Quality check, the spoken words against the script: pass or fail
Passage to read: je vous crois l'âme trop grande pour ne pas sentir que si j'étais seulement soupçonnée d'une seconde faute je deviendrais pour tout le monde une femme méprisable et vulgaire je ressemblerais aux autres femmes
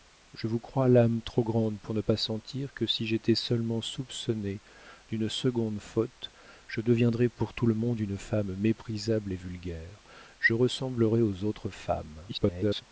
fail